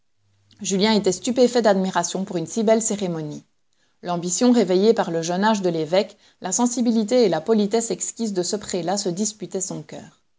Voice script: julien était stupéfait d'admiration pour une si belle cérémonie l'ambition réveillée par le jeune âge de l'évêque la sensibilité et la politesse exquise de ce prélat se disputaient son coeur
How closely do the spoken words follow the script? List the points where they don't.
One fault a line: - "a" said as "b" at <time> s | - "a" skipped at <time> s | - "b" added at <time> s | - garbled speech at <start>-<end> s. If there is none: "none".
none